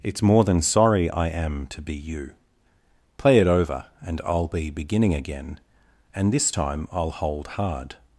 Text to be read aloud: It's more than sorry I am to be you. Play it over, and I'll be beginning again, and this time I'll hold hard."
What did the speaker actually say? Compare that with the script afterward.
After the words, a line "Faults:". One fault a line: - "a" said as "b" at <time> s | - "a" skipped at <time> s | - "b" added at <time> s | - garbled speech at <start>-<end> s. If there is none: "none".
It's more than sorry I am to be you. Play it over, and I'll be beginning again, and this time I'll hold hard."
Faults:
none